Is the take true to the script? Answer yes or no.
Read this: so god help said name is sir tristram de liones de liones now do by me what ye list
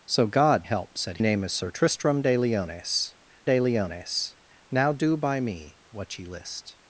yes